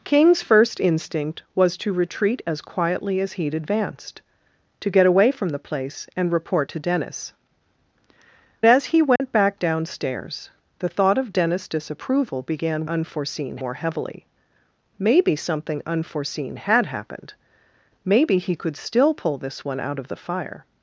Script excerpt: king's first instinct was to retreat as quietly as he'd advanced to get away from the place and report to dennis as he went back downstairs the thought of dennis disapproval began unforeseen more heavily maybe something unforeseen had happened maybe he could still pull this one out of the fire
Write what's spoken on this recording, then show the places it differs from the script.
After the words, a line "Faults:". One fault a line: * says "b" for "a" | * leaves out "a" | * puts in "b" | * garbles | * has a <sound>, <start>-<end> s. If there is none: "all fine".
king's first instinct was to retreat as quietly as he'd advanced to get away from the place and report to dennis as he went back downstairs the thought of dennis disapproval began unforeseen more heavily maybe something unforeseen had happened maybe he could still pull this one out of the fire
Faults:
* has a dropout, 9.2-9.2 s